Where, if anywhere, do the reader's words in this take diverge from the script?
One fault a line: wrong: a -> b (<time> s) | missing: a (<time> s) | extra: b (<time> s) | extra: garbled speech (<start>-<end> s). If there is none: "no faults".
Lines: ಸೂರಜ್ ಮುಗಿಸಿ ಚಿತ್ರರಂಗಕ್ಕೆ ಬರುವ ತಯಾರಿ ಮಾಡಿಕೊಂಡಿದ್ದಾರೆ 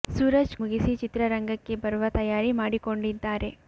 no faults